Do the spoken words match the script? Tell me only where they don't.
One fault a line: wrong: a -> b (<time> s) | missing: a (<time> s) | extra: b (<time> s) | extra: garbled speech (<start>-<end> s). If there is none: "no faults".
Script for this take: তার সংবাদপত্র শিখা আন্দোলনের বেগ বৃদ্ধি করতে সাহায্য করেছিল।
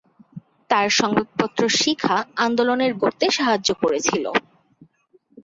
missing: বেগ বৃদ্ধি (2.9 s)